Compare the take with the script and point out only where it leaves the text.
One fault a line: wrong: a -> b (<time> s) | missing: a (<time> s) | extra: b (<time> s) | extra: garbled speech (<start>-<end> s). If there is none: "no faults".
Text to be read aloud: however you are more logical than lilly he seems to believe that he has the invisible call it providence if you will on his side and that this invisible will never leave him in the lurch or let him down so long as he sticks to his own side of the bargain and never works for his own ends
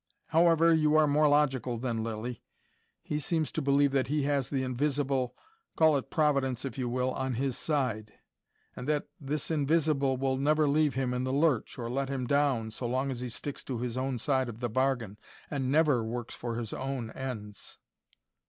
no faults